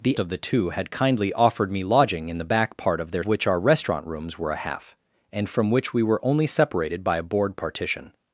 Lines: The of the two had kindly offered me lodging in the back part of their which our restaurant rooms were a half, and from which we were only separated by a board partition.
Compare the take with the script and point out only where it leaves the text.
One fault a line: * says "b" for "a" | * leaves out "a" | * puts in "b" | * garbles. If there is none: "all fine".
all fine